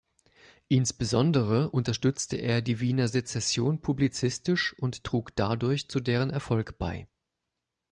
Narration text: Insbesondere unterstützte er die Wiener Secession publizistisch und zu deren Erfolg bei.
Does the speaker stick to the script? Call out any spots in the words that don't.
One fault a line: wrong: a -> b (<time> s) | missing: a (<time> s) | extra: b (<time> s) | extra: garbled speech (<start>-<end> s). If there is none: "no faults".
extra: trug dadurch (5.0 s)